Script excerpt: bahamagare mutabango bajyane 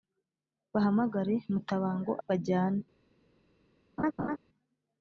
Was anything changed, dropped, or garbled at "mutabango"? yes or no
no